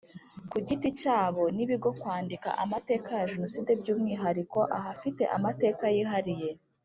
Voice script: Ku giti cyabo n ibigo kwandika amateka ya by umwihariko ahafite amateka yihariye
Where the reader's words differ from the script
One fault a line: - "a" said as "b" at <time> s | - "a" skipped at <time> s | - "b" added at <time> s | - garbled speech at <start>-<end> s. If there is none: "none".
- "jenoside" added at 3.3 s